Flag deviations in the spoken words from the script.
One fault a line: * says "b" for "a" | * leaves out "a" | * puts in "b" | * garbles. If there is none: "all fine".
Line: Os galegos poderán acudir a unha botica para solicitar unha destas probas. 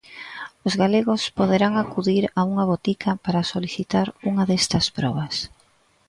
all fine